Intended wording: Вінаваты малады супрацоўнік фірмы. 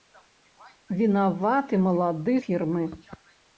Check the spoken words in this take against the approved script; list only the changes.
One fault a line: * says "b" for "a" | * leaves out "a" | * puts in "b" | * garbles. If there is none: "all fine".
* leaves out "супрацоўнік"